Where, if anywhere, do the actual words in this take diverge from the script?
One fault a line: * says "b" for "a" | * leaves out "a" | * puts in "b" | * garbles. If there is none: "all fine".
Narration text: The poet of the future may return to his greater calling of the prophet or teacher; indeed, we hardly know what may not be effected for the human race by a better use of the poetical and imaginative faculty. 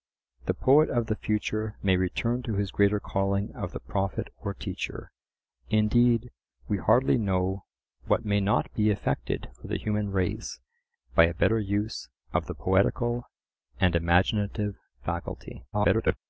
* garbles